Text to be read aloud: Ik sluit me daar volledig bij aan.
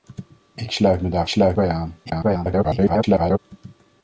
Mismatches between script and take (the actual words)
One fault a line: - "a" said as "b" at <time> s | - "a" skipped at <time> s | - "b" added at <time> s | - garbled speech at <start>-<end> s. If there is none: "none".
- "volledig" said as "sluit" at 1.3 s
- garbled speech at 2.1-3.4 s